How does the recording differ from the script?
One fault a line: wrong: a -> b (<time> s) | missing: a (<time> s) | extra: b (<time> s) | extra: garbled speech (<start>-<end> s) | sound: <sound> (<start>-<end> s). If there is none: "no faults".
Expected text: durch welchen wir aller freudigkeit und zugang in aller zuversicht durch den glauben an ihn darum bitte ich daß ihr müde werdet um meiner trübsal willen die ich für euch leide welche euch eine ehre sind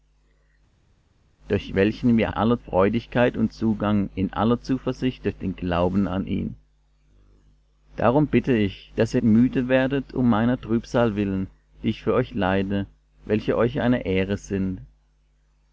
no faults